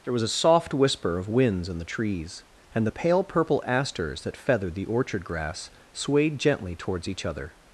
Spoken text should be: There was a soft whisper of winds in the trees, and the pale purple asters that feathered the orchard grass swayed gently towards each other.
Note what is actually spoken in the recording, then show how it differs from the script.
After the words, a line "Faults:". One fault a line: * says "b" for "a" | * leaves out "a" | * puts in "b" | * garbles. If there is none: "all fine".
There was a soft whisper of winds in the trees, and the pale purple asters that feathered the orchard grass swayed gently towards each other.
Faults:
all fine